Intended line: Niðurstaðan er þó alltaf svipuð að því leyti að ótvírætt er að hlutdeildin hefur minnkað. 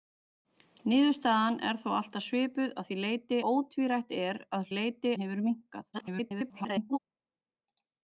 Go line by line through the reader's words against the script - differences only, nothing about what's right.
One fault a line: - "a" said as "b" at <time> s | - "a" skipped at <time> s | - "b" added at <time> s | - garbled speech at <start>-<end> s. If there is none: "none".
- "að" skipped at 3.4 s
- "hlutdeildin" said as "leyti" at 4.8 s
- garbled speech at 5.9-7.0 s